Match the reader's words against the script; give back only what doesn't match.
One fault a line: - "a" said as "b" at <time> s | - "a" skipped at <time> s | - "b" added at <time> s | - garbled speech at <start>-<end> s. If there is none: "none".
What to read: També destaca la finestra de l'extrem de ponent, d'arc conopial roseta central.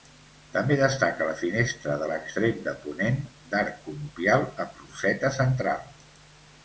- "amb" added at 4.7 s